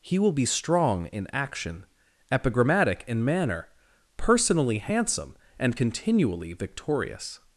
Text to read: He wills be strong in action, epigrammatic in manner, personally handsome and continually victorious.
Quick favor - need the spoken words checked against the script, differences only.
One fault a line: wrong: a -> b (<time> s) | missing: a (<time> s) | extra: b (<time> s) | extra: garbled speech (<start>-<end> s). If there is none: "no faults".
wrong: wills -> will (0.2 s)